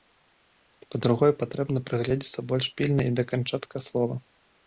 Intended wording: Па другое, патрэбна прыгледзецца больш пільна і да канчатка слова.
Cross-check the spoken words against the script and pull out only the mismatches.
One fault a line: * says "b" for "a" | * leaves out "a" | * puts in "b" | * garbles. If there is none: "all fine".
all fine